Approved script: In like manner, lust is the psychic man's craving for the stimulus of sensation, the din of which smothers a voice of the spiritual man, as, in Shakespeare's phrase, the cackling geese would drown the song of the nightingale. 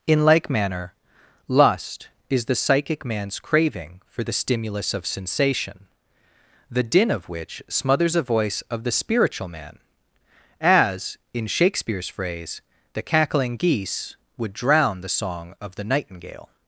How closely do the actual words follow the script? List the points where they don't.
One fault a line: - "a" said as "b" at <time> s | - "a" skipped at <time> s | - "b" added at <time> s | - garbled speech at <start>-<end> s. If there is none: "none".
none